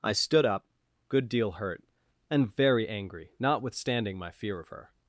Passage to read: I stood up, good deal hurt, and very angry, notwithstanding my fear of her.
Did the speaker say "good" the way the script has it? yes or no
yes